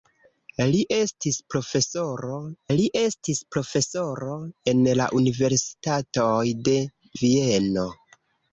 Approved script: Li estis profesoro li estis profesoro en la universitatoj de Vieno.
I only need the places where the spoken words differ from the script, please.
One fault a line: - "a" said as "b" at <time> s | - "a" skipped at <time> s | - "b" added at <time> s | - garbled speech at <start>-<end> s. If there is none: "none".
none